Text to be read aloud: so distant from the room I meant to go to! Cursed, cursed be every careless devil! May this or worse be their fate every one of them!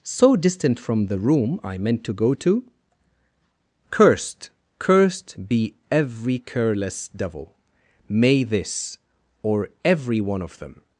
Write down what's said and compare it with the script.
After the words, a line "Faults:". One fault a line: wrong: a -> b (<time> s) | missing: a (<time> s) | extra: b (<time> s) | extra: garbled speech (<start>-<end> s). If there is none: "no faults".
so distant from the room I meant to go to! Cursed, cursed be every careless devil! May this or every one of them!
Faults:
missing: worse be their fate (9.7 s)